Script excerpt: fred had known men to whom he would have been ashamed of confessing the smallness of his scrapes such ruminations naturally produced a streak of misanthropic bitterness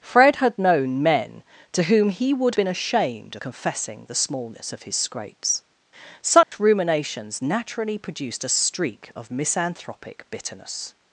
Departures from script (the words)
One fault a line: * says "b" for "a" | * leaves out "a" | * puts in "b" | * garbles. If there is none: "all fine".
* leaves out "have"
* leaves out "of"